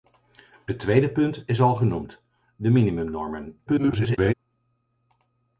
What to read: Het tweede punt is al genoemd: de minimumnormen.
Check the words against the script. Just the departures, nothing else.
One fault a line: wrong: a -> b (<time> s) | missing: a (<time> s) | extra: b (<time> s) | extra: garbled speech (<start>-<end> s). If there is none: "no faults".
extra: garbled speech (3.7-4.3 s)